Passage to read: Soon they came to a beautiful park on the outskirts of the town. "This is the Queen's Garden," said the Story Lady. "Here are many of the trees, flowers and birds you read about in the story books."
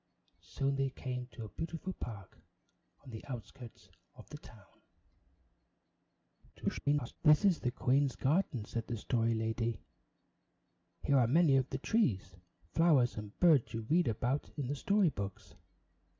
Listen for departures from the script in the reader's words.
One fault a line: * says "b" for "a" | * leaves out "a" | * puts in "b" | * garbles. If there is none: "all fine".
* garbles